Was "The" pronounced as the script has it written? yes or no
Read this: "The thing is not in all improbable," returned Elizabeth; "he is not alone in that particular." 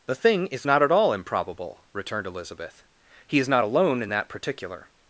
yes